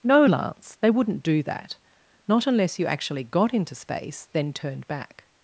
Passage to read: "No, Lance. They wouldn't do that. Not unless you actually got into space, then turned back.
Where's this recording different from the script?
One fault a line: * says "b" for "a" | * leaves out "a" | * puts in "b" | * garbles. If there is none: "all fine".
all fine